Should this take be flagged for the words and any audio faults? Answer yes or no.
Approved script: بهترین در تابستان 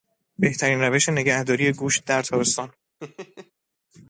yes